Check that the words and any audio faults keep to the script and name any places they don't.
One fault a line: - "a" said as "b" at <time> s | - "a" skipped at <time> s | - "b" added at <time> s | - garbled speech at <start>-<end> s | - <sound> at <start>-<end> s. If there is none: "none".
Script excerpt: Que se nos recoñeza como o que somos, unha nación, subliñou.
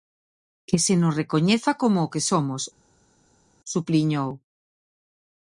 - "unha nación" skipped at 2.6 s